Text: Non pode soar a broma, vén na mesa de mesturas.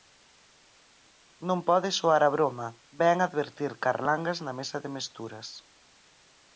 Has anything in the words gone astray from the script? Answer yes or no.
yes